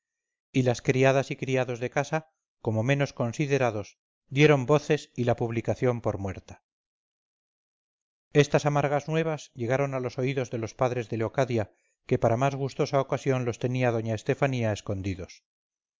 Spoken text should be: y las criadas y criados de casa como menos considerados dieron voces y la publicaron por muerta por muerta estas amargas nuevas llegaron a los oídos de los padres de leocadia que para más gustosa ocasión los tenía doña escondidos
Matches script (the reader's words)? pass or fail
fail